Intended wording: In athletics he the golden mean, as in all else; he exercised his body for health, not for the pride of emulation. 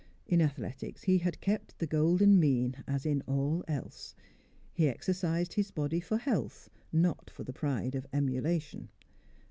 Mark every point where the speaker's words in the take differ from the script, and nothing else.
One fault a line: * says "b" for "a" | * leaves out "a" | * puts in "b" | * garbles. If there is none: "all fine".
* puts in "had kept"